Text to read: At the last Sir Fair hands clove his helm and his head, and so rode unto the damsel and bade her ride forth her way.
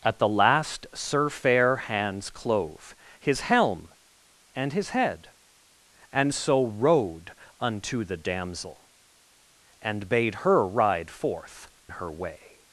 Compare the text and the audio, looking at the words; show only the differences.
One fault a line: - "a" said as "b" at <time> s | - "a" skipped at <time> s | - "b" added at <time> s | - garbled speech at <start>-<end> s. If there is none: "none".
none